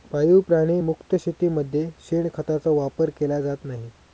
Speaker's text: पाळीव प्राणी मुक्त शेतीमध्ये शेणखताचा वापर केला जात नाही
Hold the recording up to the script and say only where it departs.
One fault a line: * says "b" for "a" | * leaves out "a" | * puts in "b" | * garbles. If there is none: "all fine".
all fine